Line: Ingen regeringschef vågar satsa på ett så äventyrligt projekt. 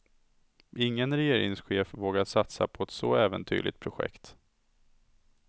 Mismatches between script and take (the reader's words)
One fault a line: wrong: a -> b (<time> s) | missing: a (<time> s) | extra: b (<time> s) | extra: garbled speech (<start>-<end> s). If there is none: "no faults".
no faults